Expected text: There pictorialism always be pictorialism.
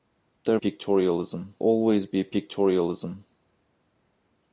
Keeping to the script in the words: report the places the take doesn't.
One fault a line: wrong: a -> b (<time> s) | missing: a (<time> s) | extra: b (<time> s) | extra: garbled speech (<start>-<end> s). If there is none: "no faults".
no faults